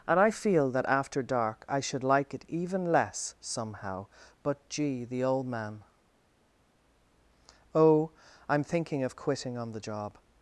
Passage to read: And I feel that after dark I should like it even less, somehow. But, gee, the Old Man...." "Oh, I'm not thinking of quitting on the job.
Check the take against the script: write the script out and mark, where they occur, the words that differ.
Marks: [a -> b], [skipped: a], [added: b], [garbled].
And I feel that after dark I should like it even less, somehow. But, gee, the Old Man...." "Oh, I'm [skipped: not] thinking of quitting on the job.